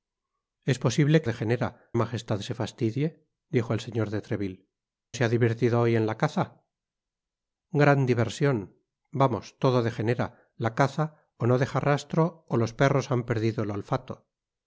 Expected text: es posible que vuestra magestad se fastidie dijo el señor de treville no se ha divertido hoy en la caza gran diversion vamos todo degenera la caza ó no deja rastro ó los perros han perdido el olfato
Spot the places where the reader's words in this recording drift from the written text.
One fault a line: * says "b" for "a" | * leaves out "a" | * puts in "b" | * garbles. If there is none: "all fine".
* says "degenera" for "vuestra"
* leaves out "no"